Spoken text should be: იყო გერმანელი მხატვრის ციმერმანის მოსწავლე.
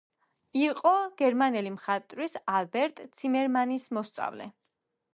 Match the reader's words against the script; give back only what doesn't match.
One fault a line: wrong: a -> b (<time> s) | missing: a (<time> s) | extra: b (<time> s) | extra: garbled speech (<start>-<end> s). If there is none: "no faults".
extra: ალბერტ (2.6 s)